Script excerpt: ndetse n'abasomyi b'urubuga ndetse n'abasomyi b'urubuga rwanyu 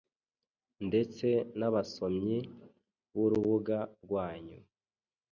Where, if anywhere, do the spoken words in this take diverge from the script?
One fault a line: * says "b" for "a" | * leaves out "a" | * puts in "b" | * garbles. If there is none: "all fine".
* leaves out "ndetse n'abasomyi b'urubuga"